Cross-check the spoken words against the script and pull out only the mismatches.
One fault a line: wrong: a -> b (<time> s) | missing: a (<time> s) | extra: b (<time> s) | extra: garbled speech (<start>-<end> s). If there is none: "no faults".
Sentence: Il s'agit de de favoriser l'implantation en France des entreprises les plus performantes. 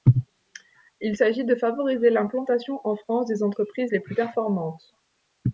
missing: de (1.6 s)